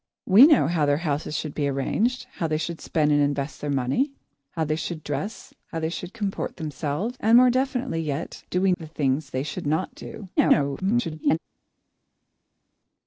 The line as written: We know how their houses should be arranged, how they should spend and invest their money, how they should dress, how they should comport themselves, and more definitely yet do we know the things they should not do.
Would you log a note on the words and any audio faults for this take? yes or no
yes